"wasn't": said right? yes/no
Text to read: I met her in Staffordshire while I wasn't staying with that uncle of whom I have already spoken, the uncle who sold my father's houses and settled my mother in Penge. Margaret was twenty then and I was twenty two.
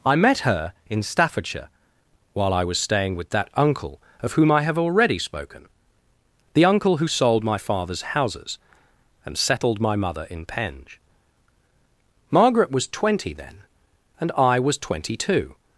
no